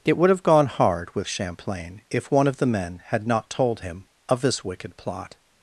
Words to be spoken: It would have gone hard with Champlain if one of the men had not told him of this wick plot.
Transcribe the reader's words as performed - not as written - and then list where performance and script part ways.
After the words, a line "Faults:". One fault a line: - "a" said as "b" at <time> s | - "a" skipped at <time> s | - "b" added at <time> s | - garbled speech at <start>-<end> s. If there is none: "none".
It would have gone hard with Champlain if one of the men had not told him of this wicked plot.
Faults:
- "wick" said as "wicked" at 4.6 s